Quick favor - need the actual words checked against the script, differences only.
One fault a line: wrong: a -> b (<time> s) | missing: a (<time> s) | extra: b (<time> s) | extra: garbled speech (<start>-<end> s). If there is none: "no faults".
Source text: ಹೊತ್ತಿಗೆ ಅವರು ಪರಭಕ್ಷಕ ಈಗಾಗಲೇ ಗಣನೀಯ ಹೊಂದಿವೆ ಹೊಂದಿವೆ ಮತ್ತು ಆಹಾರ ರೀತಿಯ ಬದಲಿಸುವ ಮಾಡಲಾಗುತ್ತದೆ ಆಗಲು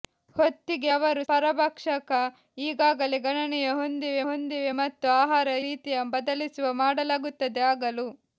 no faults